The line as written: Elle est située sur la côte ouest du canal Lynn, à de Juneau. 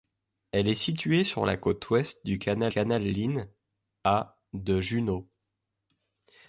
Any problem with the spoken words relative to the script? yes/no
yes